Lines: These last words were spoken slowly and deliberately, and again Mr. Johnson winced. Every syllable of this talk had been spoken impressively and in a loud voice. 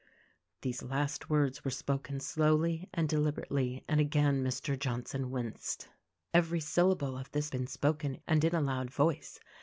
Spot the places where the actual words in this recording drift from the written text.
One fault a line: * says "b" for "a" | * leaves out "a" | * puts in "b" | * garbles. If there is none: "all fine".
* leaves out "talk had"
* leaves out "impressively"